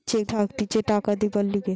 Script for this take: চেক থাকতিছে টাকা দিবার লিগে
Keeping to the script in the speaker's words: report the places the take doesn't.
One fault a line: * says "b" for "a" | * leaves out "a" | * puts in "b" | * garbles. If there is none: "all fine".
all fine